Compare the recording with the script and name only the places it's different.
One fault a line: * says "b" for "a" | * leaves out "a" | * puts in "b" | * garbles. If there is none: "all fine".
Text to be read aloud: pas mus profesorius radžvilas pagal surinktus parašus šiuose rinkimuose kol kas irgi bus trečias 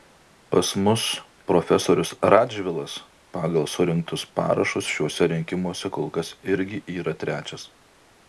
* says "yra" for "bus"